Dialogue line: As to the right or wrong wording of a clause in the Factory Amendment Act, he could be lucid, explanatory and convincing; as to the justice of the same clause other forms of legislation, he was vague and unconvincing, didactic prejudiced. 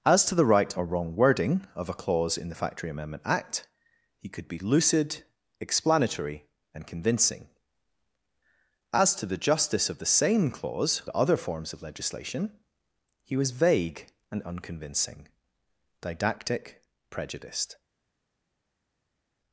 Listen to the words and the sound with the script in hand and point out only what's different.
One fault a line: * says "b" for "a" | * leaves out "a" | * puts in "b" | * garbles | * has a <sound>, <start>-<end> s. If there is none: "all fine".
all fine